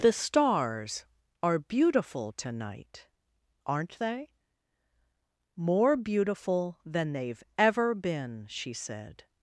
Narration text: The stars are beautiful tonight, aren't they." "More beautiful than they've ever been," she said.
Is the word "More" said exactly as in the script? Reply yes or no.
yes